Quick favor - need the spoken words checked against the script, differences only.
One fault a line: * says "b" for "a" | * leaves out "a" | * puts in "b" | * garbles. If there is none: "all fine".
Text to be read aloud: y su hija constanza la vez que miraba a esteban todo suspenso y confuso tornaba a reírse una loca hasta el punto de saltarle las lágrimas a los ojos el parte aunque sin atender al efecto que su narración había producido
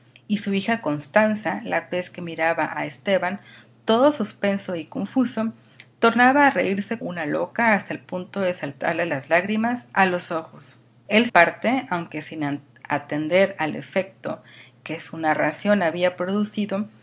all fine